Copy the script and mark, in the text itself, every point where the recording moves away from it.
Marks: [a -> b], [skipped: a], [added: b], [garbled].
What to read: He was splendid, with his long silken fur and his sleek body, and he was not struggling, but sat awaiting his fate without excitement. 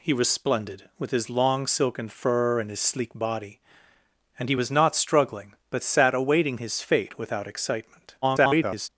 He was splendid, with his long silken fur and his sleek body, and he was not struggling, but sat awaiting his fate without excitement. [garbled]